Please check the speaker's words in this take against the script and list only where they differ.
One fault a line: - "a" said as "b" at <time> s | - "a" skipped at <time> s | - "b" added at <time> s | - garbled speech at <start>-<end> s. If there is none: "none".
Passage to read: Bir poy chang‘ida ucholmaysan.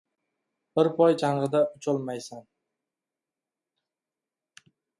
none